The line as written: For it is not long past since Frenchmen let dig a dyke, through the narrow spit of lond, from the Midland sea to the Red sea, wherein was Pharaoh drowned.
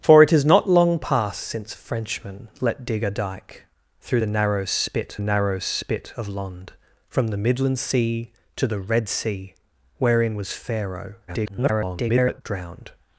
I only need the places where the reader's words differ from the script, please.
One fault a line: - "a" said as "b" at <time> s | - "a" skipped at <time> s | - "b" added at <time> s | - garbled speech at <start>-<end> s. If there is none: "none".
- "narrow spit" added at 5.2 s
- garbled speech at 11.3-12.4 s